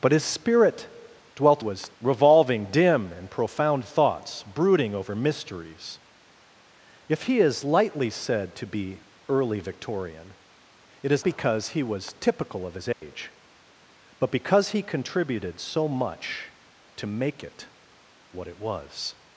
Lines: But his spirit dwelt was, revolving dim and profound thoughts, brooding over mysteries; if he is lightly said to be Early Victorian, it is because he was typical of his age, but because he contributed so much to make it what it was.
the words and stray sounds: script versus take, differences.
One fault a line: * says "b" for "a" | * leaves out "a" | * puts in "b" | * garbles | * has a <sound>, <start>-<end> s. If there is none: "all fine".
* has a dropout, 12.9-13.0 s